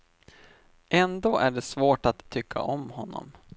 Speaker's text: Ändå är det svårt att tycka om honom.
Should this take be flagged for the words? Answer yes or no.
no